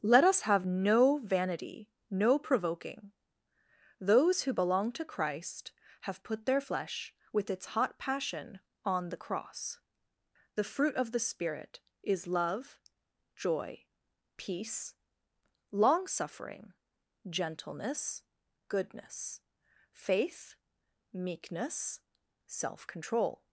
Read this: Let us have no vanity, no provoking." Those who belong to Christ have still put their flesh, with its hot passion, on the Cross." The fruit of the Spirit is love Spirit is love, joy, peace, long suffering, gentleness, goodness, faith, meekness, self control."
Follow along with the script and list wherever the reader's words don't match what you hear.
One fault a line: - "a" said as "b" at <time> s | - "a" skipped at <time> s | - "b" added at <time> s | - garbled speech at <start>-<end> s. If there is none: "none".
- "still" skipped at 6.2 s
- "Spirit is love" skipped at 12.8 s